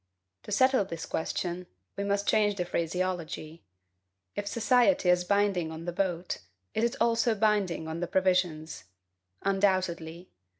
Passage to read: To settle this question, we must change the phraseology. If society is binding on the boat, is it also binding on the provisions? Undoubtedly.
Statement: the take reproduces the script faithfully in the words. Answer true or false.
true